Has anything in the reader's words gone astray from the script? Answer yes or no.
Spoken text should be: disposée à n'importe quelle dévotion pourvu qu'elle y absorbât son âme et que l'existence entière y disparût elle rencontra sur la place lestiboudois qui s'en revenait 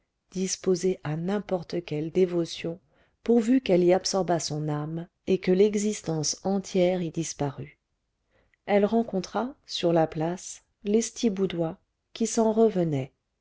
no